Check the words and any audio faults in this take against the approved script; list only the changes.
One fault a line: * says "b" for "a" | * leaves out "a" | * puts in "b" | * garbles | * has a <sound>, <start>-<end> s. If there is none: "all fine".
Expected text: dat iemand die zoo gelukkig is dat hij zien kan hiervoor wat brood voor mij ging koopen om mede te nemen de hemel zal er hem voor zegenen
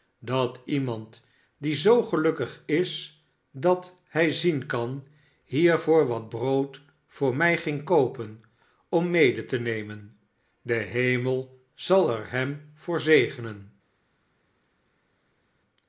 all fine